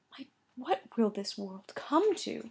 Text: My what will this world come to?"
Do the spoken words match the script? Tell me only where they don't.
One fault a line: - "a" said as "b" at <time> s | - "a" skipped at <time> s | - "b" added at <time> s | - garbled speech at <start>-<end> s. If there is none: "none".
none